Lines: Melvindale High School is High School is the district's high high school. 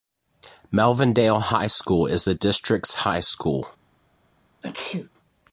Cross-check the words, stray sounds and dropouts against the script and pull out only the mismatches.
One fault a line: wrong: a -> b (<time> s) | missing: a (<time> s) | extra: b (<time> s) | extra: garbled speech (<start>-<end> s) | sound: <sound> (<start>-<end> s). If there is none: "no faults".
missing: High School is (2.2 s)
missing: high (3.2 s)
sound: sneeze (4.6-5.1 s)